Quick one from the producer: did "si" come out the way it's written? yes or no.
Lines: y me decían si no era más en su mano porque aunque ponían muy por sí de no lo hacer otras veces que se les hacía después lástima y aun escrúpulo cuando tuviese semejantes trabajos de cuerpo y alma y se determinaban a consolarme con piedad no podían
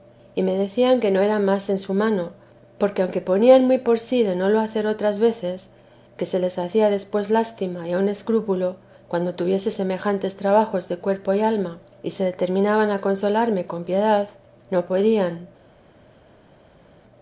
no